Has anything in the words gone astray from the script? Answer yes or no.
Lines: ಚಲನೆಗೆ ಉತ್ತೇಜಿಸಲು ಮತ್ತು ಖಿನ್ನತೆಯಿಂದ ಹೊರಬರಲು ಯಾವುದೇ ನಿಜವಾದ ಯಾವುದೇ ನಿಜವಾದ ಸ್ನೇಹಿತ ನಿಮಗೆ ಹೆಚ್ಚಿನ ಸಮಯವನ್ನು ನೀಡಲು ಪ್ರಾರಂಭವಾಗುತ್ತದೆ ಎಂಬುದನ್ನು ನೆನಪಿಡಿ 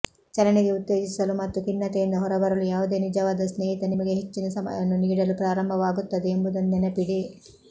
yes